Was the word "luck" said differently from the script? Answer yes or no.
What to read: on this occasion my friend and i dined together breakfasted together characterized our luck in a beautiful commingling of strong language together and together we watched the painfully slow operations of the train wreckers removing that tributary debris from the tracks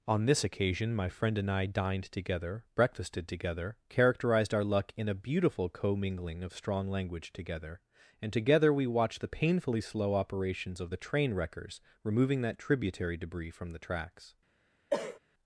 no